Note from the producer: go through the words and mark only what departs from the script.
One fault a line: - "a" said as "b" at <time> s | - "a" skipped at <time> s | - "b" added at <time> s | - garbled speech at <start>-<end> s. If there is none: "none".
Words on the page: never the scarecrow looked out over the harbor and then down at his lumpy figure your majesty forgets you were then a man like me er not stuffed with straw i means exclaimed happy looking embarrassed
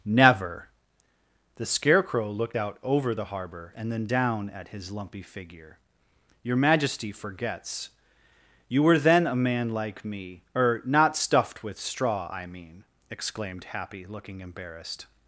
- "means" said as "mean" at 12.5 s